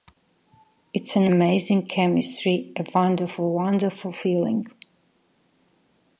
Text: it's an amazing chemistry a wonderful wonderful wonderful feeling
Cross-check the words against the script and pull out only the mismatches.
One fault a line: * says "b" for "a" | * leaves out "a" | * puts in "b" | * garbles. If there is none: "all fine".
* leaves out "wonderful"